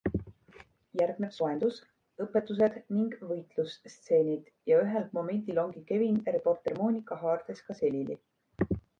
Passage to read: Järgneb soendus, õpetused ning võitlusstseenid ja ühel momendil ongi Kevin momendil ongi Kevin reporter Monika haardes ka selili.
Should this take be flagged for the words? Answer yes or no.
yes